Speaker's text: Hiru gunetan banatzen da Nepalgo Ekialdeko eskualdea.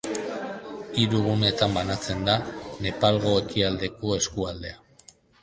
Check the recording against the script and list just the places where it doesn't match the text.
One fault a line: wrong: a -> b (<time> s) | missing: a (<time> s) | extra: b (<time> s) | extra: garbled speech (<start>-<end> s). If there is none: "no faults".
no faults